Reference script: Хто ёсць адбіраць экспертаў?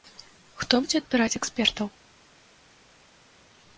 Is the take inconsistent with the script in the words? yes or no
yes